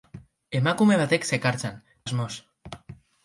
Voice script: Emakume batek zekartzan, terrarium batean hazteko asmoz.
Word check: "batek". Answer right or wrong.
right